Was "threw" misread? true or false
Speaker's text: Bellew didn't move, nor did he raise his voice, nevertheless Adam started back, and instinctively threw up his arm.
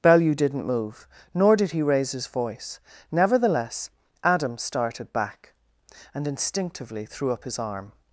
false